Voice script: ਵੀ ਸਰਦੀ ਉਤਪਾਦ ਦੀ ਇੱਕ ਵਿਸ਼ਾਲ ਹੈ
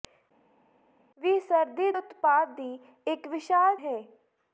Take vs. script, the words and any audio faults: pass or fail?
pass